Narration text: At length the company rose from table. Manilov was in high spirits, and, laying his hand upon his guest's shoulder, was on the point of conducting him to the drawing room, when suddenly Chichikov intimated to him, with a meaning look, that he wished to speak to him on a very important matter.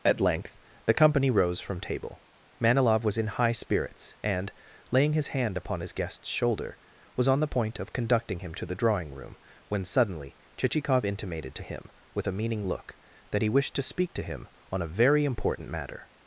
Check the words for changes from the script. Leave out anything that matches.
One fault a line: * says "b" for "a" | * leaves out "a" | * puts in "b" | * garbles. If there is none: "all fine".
all fine